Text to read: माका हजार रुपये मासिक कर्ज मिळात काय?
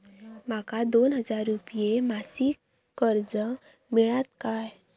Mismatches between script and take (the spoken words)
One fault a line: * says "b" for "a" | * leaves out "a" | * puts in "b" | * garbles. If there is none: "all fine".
* puts in "दोन"